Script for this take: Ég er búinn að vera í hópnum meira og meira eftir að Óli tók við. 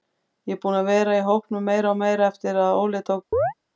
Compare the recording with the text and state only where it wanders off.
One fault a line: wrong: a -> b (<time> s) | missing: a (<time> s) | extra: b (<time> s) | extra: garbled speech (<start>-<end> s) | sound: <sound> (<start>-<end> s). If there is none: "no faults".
sound: chirp (3.3-3.5 s)